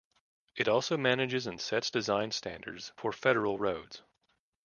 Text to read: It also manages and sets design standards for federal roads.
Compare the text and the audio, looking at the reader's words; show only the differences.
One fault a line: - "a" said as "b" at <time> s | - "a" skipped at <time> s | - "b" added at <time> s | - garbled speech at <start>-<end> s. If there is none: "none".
none